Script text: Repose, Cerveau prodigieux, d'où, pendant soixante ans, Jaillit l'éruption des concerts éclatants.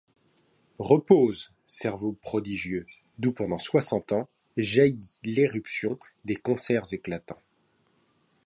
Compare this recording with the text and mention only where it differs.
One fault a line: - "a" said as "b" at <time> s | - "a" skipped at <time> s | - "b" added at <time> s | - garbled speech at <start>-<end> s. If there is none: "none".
none